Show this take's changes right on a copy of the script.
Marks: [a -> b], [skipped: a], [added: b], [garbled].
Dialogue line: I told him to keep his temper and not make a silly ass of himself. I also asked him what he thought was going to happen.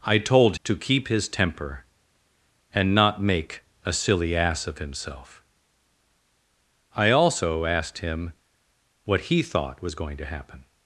I told [skipped: him] to keep his temper and not make a silly ass of himself. I also asked him what he thought was going to happen.